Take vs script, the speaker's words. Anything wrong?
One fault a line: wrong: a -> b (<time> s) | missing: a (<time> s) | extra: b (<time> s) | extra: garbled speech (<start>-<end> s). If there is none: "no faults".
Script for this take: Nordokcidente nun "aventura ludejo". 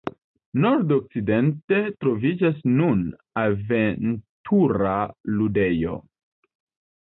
extra: troviĝas (2.0 s)